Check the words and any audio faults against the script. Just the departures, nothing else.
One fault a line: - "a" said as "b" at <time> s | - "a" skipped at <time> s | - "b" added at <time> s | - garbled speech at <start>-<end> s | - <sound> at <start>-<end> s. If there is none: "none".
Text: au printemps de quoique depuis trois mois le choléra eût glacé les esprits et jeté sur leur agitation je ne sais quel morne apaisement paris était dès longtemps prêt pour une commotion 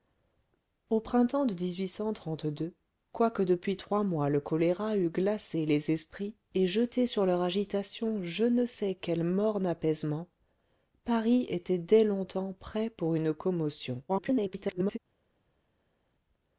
- garbled speech at 14.1-15.0 s